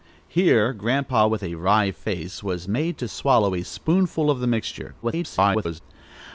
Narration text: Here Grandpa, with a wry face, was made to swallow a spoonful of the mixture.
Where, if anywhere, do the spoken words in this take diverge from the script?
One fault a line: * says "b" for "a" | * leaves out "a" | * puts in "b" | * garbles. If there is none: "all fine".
* garbles